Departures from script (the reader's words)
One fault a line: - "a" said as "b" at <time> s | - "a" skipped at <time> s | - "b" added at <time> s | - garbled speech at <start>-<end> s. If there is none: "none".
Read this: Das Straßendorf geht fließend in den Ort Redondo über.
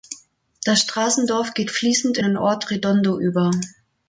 none